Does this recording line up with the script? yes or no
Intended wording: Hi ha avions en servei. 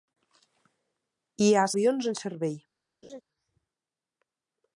yes